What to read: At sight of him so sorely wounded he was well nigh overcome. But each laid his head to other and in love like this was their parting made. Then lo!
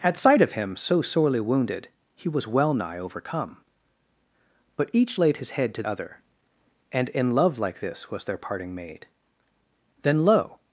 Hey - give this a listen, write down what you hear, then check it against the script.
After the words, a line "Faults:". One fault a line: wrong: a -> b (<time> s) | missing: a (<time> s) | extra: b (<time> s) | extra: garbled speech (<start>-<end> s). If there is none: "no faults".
At sight of him so sorely wounded he was well nigh overcome. But each laid his head to other and in love like this was their parting made. Then lo!
Faults:
no faults